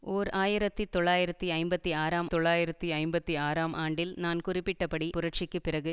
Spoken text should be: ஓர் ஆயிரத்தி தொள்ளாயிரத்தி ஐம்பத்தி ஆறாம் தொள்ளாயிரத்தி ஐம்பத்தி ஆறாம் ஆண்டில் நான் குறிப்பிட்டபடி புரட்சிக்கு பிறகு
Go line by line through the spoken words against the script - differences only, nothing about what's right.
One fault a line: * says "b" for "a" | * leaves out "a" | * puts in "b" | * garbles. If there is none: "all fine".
all fine